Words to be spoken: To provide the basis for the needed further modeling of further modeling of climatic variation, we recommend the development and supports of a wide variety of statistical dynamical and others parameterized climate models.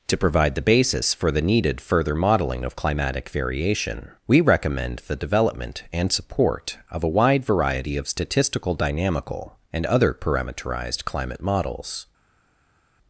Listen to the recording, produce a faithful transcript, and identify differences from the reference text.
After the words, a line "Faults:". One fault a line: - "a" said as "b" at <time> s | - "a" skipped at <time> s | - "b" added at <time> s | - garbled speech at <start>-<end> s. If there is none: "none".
To provide the basis for the needed further modeling of climatic variation, we recommend the development and support of a wide variety of statistical dynamical and other parameterized climate models.
Faults:
- "further modeling of" skipped at 2.8 s
- "supports" said as "support" at 6.1 s
- "others" said as "other" at 9.8 s